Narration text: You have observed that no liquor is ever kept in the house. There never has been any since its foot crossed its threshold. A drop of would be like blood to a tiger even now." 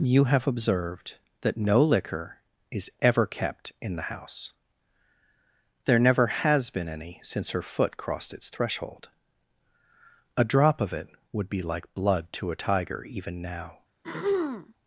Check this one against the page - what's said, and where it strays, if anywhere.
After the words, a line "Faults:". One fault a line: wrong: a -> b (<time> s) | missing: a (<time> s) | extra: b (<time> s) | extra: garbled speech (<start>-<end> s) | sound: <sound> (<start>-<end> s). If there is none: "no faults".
You have observed that no liquor is ever kept in the house. There never has been any since her foot crossed its threshold. A drop of it would be like blood to a tiger even now."
Faults:
wrong: its -> her (7.5 s)
extra: it (10.9 s)
sound: throat clearing (14.0-14.7 s)